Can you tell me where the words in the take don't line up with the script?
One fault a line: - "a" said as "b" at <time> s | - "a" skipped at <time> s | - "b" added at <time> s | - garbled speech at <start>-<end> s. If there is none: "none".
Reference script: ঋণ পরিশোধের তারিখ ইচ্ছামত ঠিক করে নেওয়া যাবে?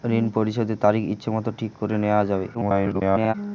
- garbled speech at 2.5-3.3 s